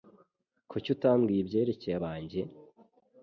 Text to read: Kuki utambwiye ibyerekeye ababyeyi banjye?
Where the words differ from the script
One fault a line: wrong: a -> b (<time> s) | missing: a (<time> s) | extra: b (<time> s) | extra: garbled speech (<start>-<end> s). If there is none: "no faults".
missing: ababyeyi (1.9 s)